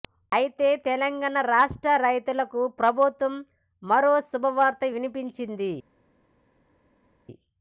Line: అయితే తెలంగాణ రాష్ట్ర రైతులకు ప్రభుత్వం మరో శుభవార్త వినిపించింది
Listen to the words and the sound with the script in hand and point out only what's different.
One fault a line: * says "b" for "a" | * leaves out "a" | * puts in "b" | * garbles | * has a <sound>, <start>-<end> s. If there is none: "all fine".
all fine